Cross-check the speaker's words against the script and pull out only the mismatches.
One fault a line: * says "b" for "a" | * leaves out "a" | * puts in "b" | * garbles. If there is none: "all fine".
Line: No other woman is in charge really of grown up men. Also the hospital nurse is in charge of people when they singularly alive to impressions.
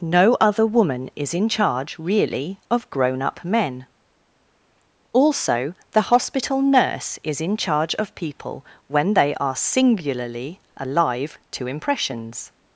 * puts in "are"